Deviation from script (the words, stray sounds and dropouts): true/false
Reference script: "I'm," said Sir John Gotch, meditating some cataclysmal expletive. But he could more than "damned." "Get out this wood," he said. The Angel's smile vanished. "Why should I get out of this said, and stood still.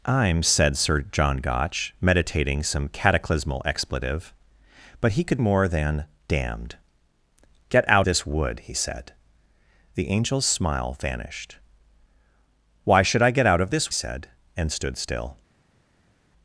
false